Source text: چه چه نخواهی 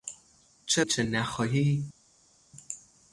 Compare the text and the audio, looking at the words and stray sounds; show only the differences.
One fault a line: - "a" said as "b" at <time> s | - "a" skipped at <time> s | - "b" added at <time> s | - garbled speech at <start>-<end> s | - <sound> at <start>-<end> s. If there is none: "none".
none